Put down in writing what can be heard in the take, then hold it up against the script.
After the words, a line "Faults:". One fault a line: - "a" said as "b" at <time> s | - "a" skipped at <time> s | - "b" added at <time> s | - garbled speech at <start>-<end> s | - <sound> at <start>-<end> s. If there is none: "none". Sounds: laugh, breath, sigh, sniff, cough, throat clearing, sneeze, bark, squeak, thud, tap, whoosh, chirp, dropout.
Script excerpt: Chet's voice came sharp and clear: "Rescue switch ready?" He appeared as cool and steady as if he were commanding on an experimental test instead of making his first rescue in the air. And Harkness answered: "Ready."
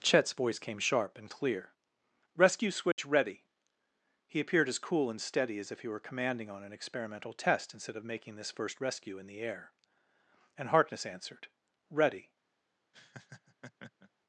Chet's voice came sharp and clear: "Rescue switch ready?" He appeared as cool and steady as if he were commanding on an experimental test instead of making this first rescue in the air. And Harkness answered: "Ready."
Faults:
- dropout at 2.9-3.0 s
- "his" said as "this" at 8.3 s
- laugh at 12.9-14.1 s